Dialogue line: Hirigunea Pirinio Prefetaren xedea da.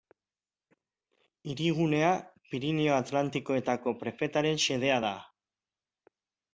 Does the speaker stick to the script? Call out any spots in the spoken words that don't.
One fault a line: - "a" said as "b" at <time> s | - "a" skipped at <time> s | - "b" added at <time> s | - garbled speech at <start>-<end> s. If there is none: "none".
- "Atlantikoetako" added at 3.0 s